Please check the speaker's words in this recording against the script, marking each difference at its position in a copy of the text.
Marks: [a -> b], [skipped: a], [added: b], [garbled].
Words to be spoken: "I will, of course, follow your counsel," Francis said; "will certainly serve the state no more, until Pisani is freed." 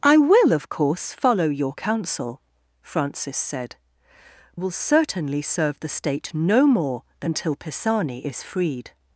"I will, of course, follow your counsel," Francis said; "will certainly serve the state no more, until Pisani is freed."